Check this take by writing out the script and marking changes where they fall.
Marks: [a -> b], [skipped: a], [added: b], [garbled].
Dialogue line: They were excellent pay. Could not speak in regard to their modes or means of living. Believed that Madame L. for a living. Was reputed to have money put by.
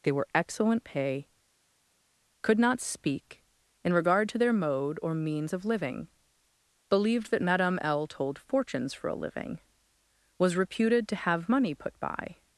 They were excellent pay. Could not speak in regard to their [modes -> mode] or means of living. Believed that Madame L. [added: told fortunes] for a living. Was reputed to have money put by.